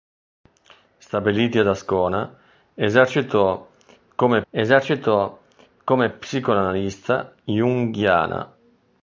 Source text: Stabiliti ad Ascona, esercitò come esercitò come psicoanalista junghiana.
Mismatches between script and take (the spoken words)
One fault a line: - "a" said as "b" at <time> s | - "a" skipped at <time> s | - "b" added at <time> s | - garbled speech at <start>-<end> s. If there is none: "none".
none